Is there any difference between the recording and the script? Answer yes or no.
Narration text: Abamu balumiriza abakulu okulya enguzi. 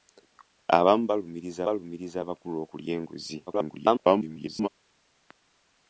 yes